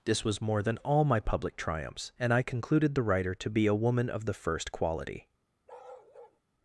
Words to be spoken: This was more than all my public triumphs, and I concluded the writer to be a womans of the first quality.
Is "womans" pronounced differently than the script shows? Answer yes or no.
yes